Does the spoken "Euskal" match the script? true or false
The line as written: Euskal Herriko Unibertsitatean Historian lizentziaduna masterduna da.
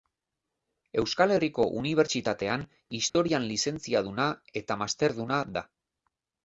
true